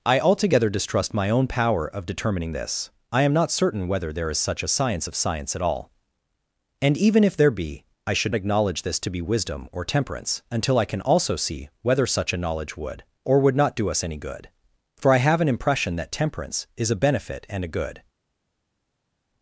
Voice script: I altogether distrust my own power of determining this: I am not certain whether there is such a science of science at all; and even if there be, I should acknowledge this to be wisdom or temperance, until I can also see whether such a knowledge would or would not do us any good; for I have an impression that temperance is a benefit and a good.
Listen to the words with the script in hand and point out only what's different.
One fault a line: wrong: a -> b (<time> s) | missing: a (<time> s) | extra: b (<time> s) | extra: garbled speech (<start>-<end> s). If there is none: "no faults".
no faults